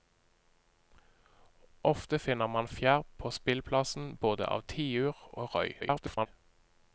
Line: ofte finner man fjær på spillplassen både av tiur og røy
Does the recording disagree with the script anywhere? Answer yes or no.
yes